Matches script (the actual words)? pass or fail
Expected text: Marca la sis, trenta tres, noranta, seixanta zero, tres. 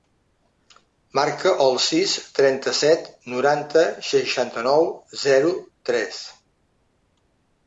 fail